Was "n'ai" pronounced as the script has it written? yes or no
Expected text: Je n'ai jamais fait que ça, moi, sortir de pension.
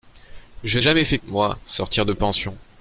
no